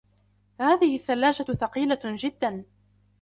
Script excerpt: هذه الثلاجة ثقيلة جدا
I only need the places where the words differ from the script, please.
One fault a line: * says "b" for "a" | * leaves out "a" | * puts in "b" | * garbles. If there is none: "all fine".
all fine